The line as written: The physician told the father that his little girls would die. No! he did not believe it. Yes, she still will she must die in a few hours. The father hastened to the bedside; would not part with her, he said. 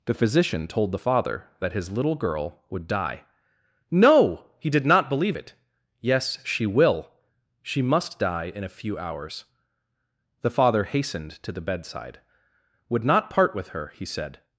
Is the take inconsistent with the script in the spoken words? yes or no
yes